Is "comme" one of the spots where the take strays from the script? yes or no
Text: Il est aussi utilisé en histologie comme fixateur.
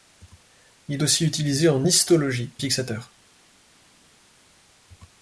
yes